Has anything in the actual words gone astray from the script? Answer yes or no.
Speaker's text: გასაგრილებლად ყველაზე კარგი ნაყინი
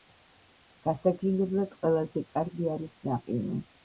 yes